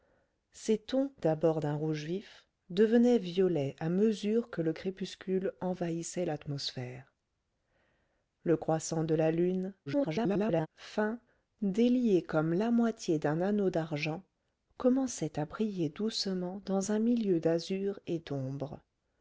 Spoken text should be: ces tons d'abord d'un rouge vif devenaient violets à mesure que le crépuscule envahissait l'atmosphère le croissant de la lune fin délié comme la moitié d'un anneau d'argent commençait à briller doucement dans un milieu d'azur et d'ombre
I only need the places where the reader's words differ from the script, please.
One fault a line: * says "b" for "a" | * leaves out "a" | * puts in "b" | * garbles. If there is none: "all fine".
* garbles